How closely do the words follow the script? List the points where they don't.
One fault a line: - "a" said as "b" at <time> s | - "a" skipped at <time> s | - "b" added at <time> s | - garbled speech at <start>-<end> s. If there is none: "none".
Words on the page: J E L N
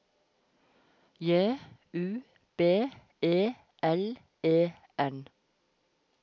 - "U B" added at 1.9 s
- "E" added at 4.4 s